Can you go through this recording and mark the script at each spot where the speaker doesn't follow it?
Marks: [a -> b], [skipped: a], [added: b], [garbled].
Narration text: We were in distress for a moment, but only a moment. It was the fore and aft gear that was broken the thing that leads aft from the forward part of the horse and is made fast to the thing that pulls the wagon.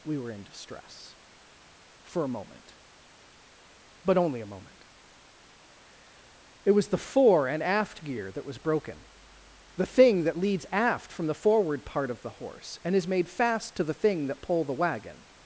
We were in distress for a moment, but only a moment. It was the fore and aft gear that was broken the thing that leads aft from the forward part of the horse and is made fast to the thing that [pulls -> pull] the wagon.